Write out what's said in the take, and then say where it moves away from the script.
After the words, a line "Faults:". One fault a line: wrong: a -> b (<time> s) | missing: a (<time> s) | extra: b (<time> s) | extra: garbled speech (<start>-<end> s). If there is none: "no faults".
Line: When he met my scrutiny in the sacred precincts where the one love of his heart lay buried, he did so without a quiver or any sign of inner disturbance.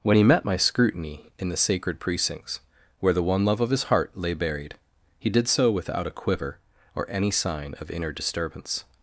When he met my scrutiny in the sacred precincts where the one love of his heart lay buried, he did so without a quiver or any sign of inner disturbance.
Faults:
no faults